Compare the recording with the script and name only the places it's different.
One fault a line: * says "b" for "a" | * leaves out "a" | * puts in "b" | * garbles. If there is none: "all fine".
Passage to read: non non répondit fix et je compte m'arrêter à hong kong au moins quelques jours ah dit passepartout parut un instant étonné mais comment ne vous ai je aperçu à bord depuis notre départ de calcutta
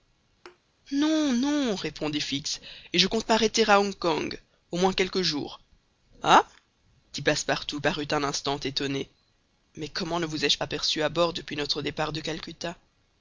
all fine